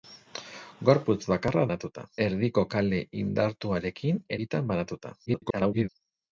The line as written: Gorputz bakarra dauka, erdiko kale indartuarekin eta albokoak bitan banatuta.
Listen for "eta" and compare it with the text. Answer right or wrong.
wrong